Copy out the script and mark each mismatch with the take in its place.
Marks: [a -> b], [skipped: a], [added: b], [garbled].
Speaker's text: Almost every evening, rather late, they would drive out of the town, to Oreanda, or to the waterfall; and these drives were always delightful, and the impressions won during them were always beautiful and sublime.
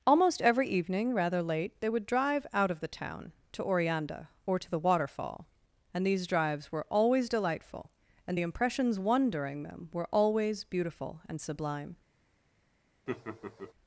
Almost every evening, rather late, they would drive out of the town, to Oreanda, or to the waterfall; and these drives were always delightful, and the impressions won during them were always beautiful and sublime.